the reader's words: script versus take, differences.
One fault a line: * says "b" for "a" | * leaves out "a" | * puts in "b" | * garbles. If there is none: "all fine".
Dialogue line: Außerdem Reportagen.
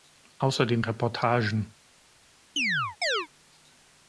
all fine